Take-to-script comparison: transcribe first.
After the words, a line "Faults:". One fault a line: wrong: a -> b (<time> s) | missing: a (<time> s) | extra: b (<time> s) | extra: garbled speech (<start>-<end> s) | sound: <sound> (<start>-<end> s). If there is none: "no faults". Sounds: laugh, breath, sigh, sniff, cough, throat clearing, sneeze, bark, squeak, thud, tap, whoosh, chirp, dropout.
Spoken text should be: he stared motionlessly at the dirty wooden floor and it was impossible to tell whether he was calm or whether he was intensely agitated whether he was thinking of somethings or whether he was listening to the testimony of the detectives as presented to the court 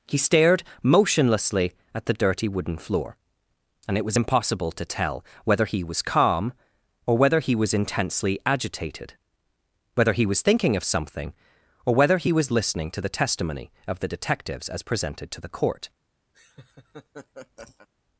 he stared motionlessly at the dirty wooden floor and it was impossible to tell whether he was calm or whether he was intensely agitated whether he was thinking of something or whether he was listening to the testimony of the detectives as presented to the court
Faults:
wrong: somethings -> something (10.8 s)
sound: laugh (16.3-17.9 s)